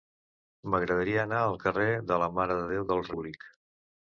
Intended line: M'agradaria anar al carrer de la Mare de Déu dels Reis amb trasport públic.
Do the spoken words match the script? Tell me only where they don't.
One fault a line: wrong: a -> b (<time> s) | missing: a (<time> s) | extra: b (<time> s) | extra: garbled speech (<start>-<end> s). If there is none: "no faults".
missing: Reis amb trasport (3.1 s)